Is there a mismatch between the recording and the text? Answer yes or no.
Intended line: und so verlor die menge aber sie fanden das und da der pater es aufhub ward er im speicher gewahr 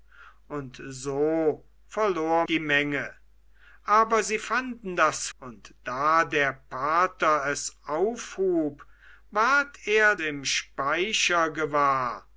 no